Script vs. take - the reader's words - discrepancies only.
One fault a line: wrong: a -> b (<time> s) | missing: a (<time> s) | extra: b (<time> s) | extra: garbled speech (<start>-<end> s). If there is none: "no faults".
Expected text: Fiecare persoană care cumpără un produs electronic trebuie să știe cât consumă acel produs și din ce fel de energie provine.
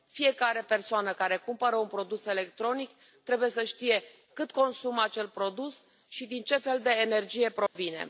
no faults